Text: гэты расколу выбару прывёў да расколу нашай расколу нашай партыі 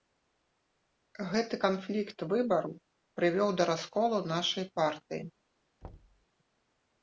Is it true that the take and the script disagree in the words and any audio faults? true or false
true